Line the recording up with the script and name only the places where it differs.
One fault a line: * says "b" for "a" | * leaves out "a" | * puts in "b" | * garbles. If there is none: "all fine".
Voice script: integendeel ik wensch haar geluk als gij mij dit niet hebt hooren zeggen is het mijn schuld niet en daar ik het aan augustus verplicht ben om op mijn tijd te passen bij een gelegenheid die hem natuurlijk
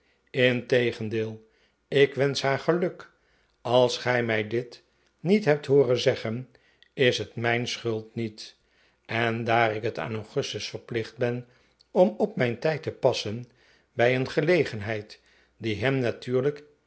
all fine